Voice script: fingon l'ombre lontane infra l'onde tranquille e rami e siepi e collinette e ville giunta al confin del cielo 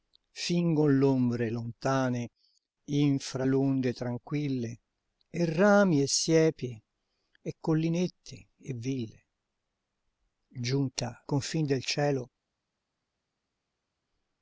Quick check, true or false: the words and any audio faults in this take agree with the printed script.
false